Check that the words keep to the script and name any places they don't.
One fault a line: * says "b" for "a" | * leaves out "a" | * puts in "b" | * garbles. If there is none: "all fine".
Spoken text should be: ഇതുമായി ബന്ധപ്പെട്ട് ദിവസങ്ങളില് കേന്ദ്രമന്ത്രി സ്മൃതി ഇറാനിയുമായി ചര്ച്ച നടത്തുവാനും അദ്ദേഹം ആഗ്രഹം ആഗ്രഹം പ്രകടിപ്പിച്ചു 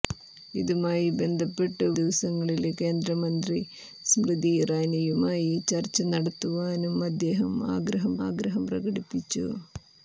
all fine